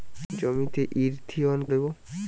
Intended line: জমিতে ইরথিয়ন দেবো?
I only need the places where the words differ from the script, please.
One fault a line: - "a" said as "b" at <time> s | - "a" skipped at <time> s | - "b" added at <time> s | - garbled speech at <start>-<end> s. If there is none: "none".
none